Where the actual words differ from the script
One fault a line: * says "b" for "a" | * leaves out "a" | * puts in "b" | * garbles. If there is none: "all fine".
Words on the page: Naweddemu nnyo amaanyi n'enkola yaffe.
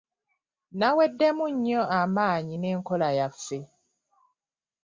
all fine